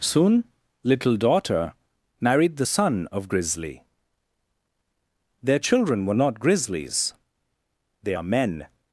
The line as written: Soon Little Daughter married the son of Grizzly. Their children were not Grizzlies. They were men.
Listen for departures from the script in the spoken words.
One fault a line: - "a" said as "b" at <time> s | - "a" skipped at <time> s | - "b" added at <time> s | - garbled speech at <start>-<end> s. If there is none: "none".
- "were" said as "are" at 8.1 s